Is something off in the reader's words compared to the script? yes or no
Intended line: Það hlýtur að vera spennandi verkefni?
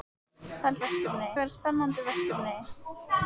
yes